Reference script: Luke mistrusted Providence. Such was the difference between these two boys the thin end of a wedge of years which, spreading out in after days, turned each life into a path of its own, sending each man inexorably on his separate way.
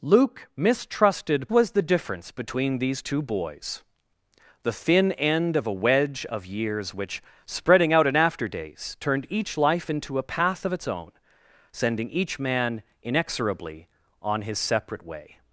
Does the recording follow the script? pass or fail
fail